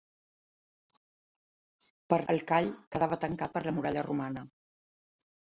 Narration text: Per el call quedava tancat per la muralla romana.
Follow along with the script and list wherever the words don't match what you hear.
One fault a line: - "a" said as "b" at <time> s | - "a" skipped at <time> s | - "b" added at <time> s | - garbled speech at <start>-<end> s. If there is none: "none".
none